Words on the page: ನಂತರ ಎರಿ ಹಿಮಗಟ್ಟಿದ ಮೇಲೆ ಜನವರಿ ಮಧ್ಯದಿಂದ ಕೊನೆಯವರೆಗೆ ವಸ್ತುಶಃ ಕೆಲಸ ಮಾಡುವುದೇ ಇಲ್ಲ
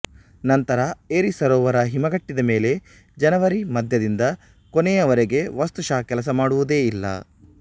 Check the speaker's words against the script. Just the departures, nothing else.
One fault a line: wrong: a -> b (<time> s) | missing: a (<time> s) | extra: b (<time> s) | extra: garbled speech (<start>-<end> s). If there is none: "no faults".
extra: ಸರೋವರ (1.3 s)